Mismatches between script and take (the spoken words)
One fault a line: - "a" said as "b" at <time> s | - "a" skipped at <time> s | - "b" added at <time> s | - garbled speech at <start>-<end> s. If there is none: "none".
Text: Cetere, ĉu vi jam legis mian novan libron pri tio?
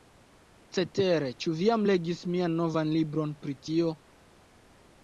none